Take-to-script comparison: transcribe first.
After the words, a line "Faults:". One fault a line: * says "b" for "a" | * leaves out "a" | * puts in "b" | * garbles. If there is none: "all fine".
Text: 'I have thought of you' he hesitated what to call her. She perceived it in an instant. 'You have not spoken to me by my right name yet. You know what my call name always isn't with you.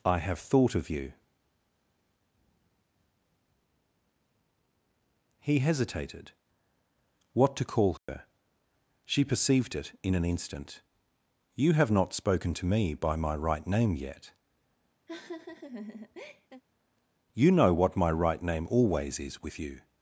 'I have thought of you' he hesitated what to call her. She perceived it in an instant. 'You have not spoken to me by my right name yet. You know what my right name always is with you.
Faults:
* says "right" for "call"
* says "is" for "isn't"